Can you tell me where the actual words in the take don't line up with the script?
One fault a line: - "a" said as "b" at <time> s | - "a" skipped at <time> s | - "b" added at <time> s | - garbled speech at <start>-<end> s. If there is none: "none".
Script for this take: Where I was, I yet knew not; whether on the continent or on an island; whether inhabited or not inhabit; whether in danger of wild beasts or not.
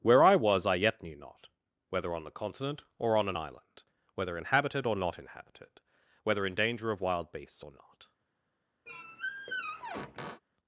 - "inhabit" said as "inhabited" at 5.2 s